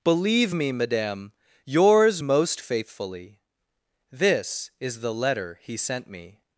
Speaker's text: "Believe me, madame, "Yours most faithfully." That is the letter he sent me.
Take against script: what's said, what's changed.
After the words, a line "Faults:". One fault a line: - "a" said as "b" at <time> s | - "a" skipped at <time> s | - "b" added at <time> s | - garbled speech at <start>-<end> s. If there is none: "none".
"Believe me, madame, "Yours most faithfully." This is the letter he sent me.
Faults:
- "That" said as "This" at 4.1 s